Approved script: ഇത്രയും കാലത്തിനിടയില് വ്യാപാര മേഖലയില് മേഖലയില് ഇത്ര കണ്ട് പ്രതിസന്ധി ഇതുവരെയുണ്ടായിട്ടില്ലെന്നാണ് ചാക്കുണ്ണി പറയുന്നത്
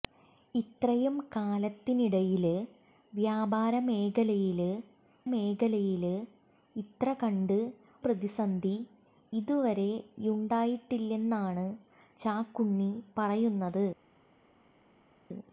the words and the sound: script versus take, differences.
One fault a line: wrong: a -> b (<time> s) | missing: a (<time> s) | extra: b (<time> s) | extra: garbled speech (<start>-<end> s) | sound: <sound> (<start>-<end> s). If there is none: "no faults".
no faults